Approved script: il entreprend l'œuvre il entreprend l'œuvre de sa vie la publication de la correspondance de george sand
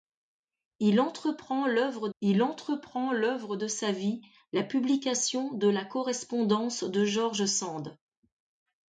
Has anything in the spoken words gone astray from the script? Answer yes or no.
no